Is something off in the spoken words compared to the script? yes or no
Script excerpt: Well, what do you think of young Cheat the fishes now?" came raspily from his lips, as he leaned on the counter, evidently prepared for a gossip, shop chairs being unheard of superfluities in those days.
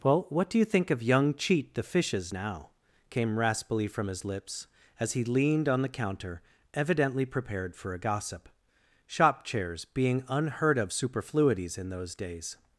no